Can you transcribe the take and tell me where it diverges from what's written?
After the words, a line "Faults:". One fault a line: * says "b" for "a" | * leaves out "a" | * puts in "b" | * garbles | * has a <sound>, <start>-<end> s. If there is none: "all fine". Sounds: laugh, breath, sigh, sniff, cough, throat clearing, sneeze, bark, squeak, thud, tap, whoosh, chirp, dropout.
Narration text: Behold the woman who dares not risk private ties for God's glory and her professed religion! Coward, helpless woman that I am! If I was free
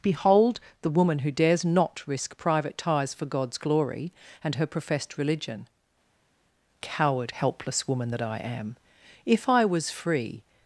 Behold the woman who dares not risk private ties for God's glory and her professed religion! Coward, helpless woman that I am! If I was free
Faults:
all fine